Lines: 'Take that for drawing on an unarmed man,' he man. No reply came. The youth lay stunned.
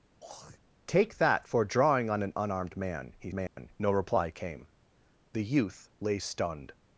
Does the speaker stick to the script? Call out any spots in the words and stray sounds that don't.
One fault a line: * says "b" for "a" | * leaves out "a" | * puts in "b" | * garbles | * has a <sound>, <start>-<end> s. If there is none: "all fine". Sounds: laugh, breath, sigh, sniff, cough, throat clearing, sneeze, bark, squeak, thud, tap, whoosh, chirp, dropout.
* has a throat clearing, 0.2-0.6 s
* has a dropout, 3.5-3.6 s